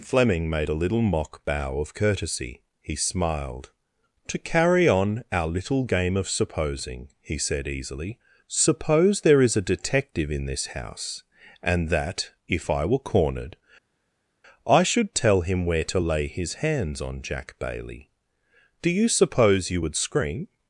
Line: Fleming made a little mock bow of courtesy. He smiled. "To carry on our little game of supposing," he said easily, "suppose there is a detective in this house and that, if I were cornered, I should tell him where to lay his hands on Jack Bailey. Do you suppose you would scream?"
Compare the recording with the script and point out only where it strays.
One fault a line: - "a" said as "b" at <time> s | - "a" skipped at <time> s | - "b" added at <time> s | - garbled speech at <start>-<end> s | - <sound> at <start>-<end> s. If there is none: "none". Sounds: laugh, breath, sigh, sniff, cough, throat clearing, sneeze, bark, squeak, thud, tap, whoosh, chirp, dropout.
none